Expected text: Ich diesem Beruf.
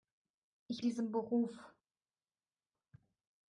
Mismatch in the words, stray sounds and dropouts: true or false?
false